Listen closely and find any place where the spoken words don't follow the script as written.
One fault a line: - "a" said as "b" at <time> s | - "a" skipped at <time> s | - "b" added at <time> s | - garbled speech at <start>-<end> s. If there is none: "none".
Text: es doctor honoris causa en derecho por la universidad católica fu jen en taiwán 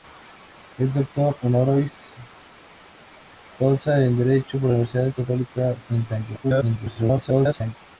- "fu jen" skipped at 5.8 s
- garbled speech at 6.4-7.8 s